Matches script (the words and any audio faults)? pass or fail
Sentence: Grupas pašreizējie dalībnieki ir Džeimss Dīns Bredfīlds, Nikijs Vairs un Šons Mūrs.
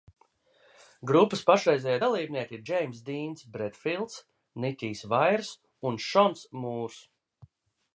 pass